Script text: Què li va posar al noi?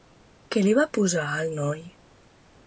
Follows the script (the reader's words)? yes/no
yes